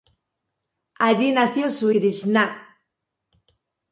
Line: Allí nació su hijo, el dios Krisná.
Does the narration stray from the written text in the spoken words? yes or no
yes